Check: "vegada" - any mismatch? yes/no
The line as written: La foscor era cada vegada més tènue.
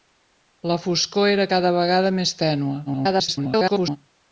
no